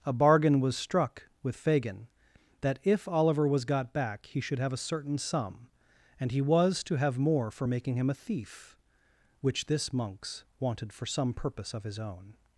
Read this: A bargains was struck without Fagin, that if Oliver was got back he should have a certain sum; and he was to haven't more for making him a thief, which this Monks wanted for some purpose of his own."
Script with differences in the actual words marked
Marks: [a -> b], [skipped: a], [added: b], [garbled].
A [bargains -> bargain] was struck [without -> with] Fagin, that if Oliver was got back he should have a certain sum; and he was to [haven't -> have] more for making him a thief, which this Monks wanted for some purpose of his own."